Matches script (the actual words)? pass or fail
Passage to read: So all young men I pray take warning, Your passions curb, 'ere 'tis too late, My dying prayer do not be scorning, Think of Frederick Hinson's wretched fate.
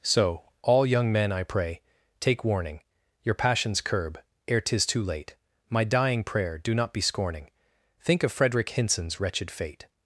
pass